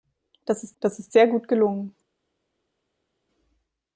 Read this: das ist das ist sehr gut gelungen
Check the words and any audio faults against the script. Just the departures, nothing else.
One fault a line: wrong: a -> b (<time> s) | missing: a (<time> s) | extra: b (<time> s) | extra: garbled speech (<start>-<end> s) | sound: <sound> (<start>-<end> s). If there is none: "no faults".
no faults